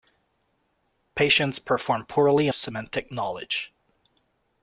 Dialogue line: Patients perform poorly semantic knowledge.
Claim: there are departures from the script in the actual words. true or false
false